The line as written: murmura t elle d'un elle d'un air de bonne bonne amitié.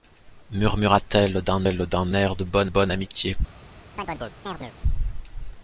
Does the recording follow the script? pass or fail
pass